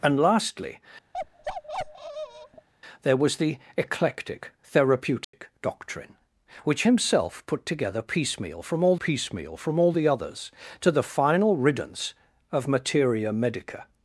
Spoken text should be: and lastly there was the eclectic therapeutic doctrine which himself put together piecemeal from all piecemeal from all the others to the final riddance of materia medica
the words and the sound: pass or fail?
fail